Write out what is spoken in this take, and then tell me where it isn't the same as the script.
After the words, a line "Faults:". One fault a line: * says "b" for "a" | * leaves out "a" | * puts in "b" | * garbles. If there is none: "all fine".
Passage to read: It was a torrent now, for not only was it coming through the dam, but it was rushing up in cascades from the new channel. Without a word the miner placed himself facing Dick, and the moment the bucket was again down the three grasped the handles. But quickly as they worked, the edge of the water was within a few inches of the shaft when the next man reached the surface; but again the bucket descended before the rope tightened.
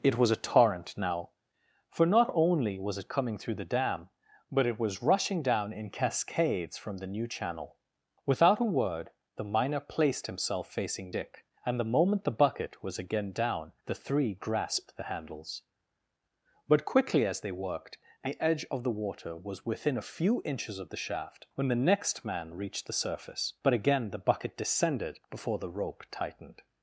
It was a torrent now, for not only was it coming through the dam, but it was rushing down in cascades from the new channel. Without a word the miner placed himself facing Dick, and the moment the bucket was again down the three grasped the handles. But quickly as they worked, the edge of the water was within a few inches of the shaft when the next man reached the surface; but again the bucket descended before the rope tightened.
Faults:
* says "down" for "up"